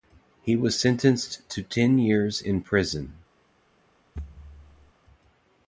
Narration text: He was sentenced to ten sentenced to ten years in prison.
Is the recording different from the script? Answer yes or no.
yes